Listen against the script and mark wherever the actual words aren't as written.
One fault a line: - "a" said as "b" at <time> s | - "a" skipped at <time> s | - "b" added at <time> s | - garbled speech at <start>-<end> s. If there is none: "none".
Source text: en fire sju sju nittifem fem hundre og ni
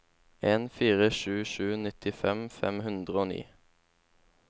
none